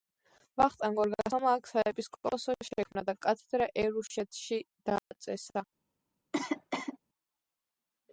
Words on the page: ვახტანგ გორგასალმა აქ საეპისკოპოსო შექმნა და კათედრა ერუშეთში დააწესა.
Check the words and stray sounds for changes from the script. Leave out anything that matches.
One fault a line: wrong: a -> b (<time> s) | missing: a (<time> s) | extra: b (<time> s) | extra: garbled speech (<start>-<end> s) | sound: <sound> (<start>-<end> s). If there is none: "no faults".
sound: dropout (5.0-5.1 s)
sound: cough (6.3-7.0 s)